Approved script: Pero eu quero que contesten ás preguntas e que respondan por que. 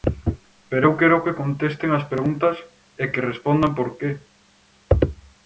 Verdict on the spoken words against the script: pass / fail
pass